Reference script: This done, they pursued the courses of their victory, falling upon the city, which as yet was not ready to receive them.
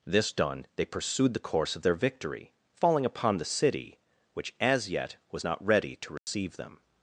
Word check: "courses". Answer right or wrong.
wrong